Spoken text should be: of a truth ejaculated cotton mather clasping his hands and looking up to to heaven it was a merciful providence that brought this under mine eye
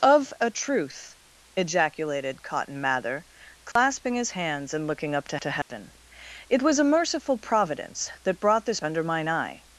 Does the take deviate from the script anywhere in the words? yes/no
no